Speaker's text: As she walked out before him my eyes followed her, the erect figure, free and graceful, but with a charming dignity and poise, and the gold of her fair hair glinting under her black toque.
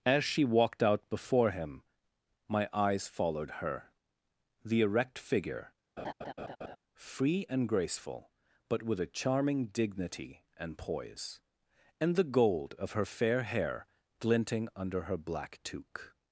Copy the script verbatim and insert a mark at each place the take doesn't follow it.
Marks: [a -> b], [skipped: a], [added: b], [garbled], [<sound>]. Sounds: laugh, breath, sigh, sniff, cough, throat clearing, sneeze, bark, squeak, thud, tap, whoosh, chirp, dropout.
As she walked out before him my eyes followed her, the erect figure, [laugh] free and graceful, but with a charming dignity and poise, and the gold of her fair hair glinting under her black toque.